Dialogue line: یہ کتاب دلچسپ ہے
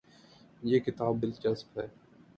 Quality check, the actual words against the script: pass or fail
pass